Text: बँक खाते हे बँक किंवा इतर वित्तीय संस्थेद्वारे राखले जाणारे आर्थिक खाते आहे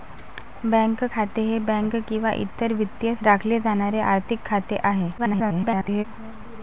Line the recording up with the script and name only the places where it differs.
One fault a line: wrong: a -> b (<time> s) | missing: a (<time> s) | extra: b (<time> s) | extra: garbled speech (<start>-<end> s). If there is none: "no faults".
missing: संस्थेद्वारे (3.1 s)
extra: garbled speech (5.2-6.0 s)